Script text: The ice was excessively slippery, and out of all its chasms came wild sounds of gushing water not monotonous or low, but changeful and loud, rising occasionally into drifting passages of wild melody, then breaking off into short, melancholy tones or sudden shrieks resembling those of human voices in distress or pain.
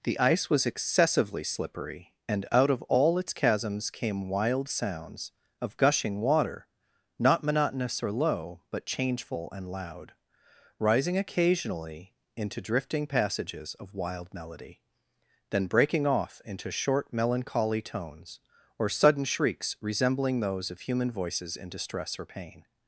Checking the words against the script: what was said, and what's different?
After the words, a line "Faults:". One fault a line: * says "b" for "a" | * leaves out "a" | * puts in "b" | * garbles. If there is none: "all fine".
The ice was excessively slippery, and out of all its chasms came wild sounds of gushing water not monotonous or low, but changeful and loud, rising occasionally into drifting passages of wild melody, then breaking off into short, melancholy tones or sudden shrieks resembling those of human voices in distress or pain.
Faults:
all fine